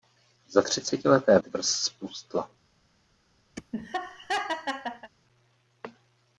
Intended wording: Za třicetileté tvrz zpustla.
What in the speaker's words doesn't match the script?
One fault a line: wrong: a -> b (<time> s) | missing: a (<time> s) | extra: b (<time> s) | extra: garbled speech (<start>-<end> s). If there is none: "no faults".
no faults